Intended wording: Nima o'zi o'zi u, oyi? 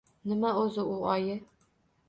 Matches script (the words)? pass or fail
fail